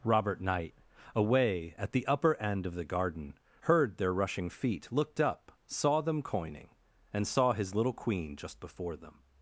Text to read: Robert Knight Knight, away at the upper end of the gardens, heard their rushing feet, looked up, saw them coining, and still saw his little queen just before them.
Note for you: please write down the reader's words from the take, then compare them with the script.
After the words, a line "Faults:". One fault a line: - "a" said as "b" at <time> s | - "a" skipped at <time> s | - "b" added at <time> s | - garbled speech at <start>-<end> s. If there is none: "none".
Robert Knight, away at the upper end of the garden, heard their rushing feet, looked up, saw them coining, and saw his little queen just before them.
Faults:
- "Knight" skipped at 0.7 s
- "gardens" said as "garden" at 2.9 s
- "still" skipped at 7.3 s